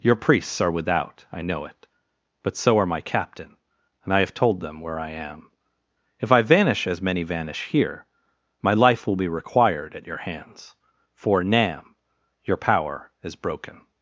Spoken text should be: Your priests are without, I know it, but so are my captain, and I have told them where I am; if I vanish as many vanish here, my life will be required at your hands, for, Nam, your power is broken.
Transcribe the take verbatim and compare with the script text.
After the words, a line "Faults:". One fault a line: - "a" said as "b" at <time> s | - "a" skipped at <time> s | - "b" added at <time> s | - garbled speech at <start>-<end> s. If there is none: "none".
Your priests are without, I know it, but so are my captain, and I have told them where I am; if I vanish as many vanish here, my life will be required at your hands, for, Nam, your power is broken.
Faults:
none